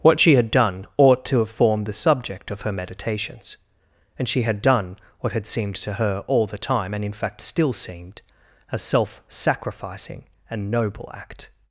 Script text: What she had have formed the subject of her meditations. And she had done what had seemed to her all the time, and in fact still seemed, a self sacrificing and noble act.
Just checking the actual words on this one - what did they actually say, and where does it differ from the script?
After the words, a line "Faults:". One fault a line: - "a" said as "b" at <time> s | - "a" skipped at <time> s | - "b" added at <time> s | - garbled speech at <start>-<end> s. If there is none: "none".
What she had done ought to have formed the subject of her meditations. And she had done what had seemed to her all the time, and in fact still seemed, a self sacrificing and noble act.
Faults:
- "done ought to" added at 0.5 s